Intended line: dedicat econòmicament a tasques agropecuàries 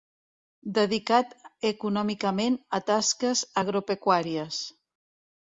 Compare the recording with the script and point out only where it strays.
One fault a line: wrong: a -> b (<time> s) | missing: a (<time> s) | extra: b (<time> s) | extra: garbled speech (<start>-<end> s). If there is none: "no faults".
no faults